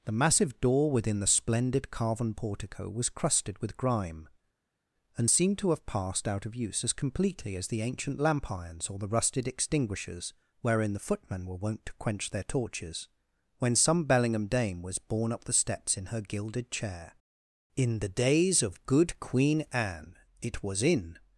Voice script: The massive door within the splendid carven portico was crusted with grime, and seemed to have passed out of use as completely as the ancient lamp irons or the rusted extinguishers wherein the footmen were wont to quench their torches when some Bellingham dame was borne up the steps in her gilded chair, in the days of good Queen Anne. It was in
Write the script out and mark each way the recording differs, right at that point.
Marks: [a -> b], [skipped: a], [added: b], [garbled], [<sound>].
The massive door within the splendid carven portico was crusted with grime, and seemed to have passed out of use as completely as the ancient lamp irons or the rusted extinguishers wherein the footmen were wont to quench their torches when some Bellingham dame was borne up the steps in her gilded chair, in the days of good Queen Anne. It was in